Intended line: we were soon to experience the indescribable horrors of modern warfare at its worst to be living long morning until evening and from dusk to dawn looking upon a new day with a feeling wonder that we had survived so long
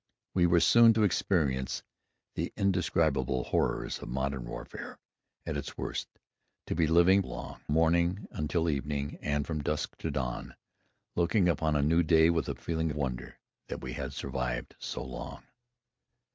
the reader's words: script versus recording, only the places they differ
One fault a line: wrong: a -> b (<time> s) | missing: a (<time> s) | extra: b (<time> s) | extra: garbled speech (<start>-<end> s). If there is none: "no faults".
no faults